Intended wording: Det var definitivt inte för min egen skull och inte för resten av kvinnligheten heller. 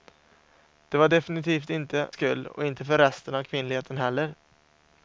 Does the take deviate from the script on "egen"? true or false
true